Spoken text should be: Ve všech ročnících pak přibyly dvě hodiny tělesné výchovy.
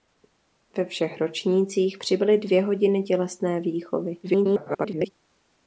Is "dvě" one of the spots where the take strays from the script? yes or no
no